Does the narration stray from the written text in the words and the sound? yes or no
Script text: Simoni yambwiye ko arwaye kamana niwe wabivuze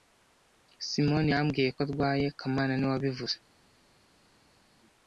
no